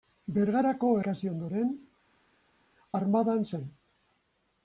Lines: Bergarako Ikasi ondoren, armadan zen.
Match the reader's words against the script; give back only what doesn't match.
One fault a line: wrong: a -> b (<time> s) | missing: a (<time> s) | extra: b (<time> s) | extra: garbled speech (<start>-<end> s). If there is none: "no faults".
no faults